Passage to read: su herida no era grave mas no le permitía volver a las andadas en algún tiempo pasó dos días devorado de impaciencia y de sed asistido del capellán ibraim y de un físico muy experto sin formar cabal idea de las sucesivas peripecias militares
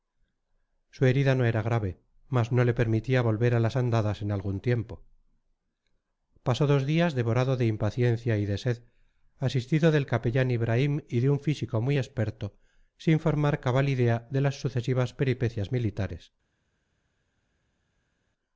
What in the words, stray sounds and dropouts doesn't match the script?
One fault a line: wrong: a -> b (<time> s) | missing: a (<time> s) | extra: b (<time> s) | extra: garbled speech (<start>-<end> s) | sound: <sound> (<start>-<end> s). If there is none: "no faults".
no faults